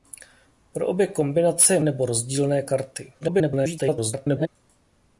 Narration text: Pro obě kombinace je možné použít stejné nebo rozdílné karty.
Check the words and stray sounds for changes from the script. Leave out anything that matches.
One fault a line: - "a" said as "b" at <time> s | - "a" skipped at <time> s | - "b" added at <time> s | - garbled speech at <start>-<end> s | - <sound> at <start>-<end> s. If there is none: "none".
- "možné použít stejné" skipped at 1.8 s
- garbled speech at 3.2-4.5 s